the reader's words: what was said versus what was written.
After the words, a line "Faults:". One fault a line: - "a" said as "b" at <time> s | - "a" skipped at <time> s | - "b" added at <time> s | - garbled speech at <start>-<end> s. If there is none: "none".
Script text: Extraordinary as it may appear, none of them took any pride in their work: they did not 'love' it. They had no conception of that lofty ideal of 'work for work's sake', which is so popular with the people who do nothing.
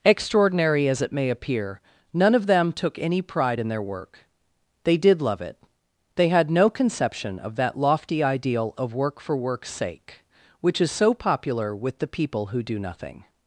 Extraordinary as it may appear, none of them took any pride in their work: they did 'love' it. They had no conception of that lofty ideal of 'work for work's sake', which is so popular with the people who do nothing.
Faults:
- "not" skipped at 5.2 s